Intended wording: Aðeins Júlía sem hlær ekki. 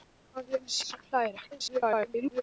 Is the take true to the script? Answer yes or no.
no